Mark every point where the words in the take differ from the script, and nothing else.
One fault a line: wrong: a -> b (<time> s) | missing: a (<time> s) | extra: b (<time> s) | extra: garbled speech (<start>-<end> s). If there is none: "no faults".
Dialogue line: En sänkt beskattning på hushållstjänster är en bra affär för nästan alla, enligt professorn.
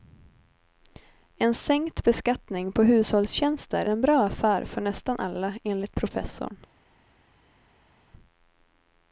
missing: är (3.9 s)